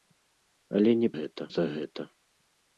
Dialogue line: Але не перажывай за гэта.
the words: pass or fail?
fail